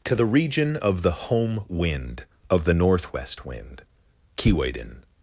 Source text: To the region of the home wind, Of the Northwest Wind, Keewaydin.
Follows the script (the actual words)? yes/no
yes